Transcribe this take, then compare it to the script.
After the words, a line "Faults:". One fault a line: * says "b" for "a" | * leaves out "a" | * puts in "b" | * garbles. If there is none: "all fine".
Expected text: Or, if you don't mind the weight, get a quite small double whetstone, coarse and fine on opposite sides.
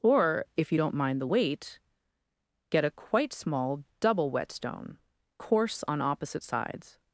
Or, if you don't mind the weight, get a quite small double whetstone, coarse on opposite sides.
Faults:
* leaves out "and fine"